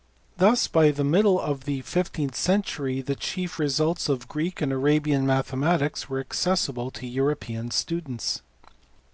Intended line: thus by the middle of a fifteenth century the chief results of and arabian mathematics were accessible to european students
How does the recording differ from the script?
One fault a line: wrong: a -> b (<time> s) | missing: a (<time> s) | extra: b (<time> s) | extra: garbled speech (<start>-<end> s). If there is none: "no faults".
wrong: a -> the (1.6 s)
extra: greek (4.3 s)